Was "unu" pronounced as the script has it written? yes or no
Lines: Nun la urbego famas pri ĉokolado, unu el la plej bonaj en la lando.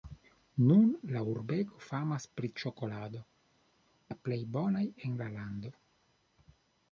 no